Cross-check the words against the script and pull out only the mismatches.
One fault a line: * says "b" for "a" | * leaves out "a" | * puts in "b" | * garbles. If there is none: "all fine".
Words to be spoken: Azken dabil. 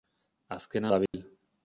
all fine